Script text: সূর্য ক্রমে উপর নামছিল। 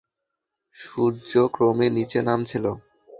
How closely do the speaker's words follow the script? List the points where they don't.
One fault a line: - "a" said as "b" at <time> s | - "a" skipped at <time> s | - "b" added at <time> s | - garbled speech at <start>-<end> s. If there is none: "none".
- "উপর" said as "নিচে" at 2.0 s